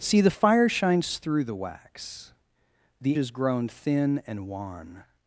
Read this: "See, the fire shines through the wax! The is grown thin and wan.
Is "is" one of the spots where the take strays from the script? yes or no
no